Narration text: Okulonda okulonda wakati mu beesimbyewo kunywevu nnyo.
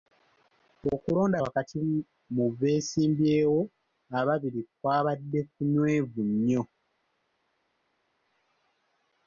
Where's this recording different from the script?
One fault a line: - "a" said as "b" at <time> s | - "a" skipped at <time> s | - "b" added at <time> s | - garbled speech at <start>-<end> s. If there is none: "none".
- "okulonda" skipped at 1.4 s
- "ababiri kwabadde" added at 4.2 s